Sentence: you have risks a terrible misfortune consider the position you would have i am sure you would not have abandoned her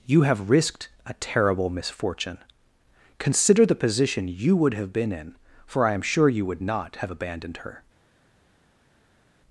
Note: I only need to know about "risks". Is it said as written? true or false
false